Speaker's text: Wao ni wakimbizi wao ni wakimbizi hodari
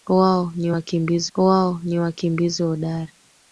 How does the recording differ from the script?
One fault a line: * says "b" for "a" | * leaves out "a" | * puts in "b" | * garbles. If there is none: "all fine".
all fine